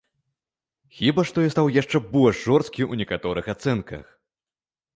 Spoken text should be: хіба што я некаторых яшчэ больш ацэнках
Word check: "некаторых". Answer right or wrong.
wrong